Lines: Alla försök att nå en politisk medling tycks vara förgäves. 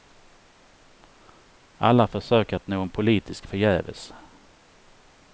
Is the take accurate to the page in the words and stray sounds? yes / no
no